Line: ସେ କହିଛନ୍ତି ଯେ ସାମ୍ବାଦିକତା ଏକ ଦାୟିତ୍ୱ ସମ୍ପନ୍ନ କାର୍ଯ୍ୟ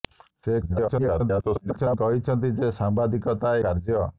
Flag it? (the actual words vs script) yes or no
yes